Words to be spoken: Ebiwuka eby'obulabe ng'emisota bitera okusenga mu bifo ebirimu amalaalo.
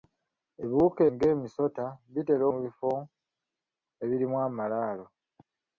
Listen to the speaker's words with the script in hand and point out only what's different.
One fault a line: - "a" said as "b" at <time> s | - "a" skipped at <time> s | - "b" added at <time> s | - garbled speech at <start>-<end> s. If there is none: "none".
- "eby'obulabe" skipped at 1.0 s
- "okusenga" skipped at 2.4 s